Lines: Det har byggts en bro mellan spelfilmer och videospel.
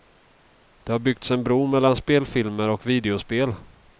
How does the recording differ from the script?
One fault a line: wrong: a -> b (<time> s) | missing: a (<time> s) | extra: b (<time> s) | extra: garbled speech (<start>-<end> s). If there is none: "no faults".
no faults